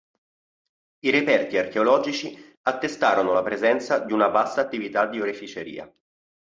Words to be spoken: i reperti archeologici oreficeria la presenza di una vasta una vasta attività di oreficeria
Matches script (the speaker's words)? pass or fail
fail